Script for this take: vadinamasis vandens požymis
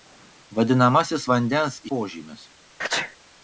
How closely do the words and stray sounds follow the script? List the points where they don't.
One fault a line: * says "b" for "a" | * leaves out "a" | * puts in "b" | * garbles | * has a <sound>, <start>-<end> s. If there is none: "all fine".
* has a sneeze, 2.8-3.2 s